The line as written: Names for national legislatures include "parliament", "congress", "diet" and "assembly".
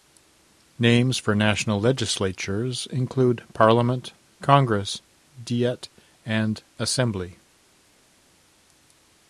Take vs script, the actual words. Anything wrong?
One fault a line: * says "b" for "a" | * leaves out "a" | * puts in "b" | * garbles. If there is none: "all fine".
all fine